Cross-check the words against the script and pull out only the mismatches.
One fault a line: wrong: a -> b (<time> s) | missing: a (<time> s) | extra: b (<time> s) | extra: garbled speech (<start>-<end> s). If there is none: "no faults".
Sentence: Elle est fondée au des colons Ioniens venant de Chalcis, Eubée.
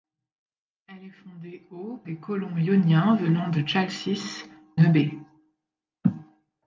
no faults